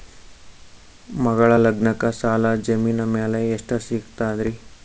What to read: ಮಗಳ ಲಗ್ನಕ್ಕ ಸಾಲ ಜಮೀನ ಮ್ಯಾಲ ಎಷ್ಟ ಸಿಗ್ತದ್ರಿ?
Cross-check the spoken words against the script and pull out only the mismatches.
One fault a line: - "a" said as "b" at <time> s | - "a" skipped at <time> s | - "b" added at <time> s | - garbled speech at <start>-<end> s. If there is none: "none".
none